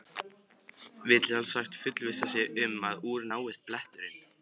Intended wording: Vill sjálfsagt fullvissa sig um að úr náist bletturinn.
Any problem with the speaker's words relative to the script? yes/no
no